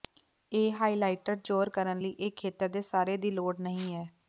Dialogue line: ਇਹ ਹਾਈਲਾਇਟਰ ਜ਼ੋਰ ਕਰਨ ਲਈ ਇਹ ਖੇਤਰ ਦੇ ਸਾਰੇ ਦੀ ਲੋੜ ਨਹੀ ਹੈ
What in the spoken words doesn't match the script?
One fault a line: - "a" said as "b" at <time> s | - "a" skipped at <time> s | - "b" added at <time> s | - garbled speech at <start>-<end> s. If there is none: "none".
none